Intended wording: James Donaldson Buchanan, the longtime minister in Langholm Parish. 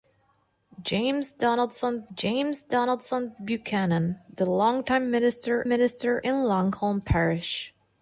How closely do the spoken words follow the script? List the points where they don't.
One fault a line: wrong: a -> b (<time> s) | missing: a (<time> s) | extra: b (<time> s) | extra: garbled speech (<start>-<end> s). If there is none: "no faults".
extra: james Donaldson (2.1 s)
extra: minister (5.7 s)